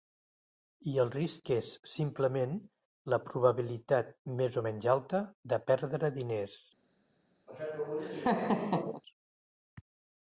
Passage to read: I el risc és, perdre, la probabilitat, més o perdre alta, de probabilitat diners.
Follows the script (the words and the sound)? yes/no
no